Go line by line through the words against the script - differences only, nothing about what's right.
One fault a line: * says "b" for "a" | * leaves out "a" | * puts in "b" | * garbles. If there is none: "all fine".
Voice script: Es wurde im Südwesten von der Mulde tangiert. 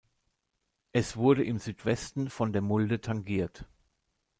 all fine